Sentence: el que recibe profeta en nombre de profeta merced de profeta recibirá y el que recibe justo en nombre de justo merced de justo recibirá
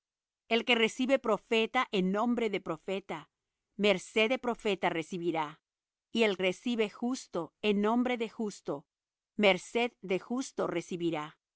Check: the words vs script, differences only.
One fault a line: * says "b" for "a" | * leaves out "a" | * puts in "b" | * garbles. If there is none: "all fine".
* leaves out "que"